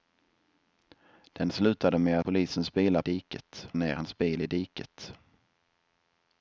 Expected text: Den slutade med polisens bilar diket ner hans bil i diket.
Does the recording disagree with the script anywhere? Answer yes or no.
no